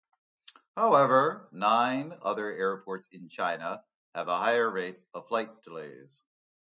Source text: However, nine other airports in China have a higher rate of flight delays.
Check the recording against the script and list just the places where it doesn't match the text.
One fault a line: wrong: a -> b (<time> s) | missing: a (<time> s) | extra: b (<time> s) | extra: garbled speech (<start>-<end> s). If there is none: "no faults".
no faults